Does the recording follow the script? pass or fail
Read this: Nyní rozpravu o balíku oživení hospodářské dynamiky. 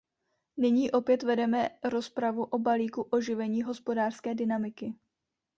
fail